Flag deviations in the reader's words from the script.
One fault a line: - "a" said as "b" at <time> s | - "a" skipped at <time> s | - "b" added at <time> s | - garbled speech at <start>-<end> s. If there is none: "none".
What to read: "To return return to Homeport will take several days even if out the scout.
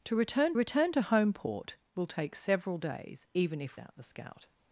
none